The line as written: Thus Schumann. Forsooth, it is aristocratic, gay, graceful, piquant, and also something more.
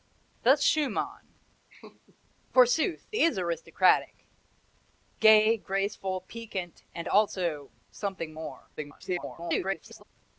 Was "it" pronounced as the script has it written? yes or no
no